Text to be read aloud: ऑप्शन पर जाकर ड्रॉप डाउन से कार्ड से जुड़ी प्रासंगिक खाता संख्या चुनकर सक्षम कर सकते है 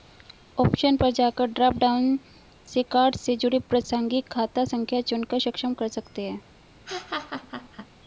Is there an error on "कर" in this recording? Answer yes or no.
no